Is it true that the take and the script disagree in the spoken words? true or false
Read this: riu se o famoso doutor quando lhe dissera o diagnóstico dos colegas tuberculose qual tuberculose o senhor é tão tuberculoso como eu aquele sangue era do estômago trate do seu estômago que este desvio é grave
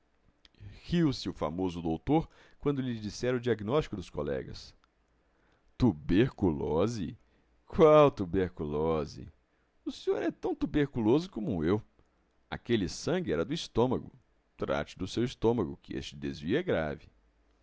false